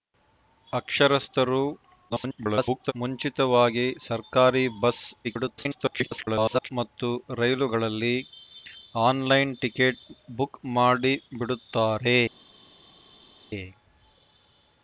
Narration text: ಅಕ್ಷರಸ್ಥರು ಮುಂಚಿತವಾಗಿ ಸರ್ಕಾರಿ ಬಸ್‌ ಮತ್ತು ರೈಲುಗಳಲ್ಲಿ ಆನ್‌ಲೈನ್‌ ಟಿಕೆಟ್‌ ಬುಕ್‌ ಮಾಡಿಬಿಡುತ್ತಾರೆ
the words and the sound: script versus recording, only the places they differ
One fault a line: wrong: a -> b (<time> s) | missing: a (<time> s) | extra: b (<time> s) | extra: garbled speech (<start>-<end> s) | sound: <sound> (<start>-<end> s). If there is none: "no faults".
extra: garbled speech (2.1-2.9 s)
extra: garbled speech (5.2-6.7 s)